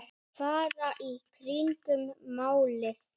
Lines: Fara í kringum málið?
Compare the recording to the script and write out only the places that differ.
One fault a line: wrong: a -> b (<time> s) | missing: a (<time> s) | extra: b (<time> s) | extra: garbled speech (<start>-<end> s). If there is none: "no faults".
no faults